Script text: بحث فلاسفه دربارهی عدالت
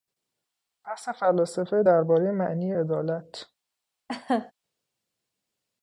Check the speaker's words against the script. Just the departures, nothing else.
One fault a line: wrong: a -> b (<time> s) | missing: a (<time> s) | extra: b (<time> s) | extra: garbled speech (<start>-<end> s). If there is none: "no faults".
extra: معنی (2.3 s)